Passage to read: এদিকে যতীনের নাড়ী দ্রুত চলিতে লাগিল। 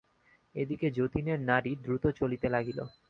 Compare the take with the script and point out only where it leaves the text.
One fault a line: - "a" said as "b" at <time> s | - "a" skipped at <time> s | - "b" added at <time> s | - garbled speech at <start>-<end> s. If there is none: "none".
none